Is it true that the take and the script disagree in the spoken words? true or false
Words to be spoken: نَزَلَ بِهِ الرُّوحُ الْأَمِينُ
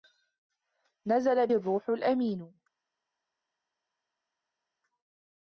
true